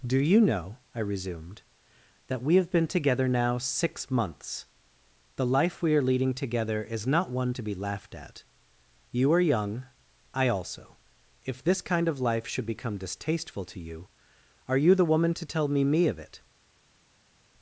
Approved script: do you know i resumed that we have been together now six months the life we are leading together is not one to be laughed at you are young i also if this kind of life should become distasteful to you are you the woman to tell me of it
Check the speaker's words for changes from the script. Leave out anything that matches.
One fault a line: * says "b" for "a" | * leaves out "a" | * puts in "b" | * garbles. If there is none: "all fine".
* puts in "me"